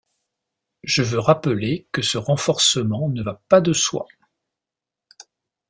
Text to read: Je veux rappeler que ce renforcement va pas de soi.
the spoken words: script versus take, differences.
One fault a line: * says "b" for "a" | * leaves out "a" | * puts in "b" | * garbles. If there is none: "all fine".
* puts in "ne"